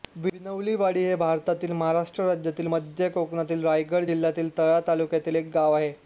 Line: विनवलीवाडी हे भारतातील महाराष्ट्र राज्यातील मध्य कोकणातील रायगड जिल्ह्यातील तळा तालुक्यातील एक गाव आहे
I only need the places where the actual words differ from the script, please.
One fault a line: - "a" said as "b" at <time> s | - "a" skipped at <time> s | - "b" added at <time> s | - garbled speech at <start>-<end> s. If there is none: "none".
none